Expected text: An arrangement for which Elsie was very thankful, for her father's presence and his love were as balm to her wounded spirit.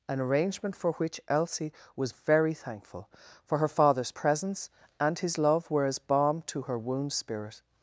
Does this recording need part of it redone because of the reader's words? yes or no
yes